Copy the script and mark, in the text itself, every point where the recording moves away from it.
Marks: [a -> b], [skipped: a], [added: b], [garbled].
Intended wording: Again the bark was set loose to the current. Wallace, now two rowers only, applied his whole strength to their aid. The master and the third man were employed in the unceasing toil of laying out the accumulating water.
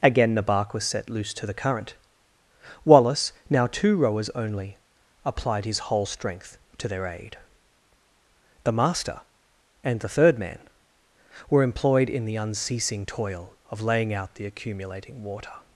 Again the bark was set loose to the current. Wallace, now two rowers only, applied his whole strength to their aid. The master and the third man were employed in the unceasing toil of laying out the accumulating water.